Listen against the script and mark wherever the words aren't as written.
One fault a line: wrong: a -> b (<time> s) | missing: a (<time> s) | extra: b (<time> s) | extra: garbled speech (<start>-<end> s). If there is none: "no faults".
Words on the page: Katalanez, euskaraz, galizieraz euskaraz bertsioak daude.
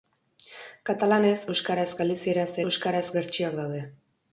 no faults